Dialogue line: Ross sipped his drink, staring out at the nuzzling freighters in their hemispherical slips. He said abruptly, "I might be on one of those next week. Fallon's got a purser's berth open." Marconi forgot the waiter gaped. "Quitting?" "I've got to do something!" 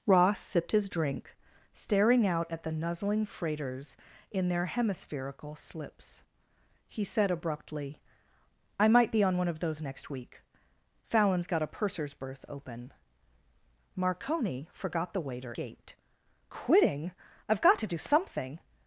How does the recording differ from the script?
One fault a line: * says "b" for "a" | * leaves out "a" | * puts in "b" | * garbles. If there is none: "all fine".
all fine